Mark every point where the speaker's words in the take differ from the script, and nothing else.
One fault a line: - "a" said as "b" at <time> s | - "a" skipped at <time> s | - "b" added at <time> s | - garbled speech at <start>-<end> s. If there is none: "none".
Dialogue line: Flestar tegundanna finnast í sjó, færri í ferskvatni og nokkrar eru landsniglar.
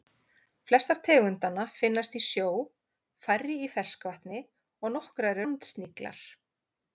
- "eru" skipped at 5.4 s